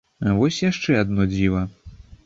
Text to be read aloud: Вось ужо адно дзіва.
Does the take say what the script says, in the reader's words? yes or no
no